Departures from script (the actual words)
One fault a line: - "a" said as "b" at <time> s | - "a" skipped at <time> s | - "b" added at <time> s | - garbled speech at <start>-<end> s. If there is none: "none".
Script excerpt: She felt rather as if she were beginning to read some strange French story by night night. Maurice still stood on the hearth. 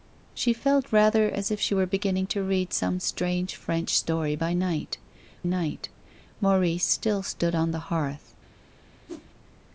none